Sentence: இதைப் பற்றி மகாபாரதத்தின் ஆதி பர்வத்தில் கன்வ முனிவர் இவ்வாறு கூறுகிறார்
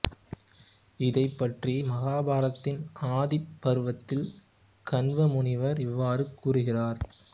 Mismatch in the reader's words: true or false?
false